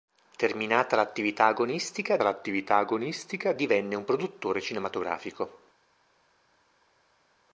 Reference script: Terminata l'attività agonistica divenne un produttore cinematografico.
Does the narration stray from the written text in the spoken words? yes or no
yes